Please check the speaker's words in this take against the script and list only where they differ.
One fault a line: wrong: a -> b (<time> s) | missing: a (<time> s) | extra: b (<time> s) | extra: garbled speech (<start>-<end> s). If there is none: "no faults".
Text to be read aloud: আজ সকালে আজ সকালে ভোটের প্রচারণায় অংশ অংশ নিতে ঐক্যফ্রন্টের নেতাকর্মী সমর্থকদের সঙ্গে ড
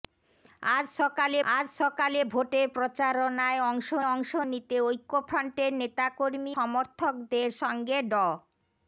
no faults